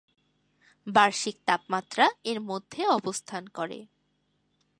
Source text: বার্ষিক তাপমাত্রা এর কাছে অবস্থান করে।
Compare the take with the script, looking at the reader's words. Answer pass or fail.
fail